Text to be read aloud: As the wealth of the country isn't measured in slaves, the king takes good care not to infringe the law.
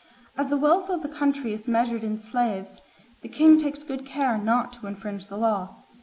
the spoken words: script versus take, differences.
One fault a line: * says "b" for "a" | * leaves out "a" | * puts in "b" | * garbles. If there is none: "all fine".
* says "is" for "isn't"